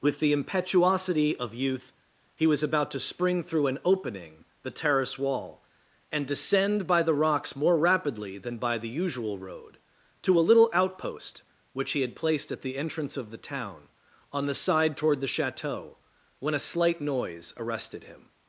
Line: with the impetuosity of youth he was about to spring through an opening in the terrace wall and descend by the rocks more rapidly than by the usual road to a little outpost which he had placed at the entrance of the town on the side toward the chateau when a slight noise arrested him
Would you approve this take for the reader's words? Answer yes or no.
no